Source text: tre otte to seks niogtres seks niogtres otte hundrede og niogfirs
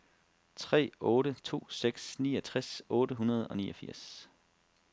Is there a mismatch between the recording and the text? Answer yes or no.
yes